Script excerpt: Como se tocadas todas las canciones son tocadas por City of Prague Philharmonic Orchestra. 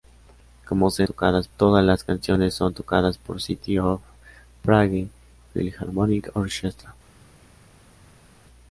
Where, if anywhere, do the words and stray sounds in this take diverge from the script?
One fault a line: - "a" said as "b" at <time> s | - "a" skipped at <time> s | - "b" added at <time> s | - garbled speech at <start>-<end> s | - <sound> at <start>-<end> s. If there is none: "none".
none